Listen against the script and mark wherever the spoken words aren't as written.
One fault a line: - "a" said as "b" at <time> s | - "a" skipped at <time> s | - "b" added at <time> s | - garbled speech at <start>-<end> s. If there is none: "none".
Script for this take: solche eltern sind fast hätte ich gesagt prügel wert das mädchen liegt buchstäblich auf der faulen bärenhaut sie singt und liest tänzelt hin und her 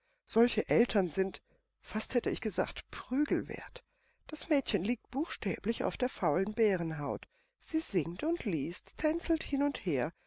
none